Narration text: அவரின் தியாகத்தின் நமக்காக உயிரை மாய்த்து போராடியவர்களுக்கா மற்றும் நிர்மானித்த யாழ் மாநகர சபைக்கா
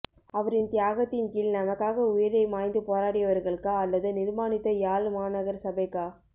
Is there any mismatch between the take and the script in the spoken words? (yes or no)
yes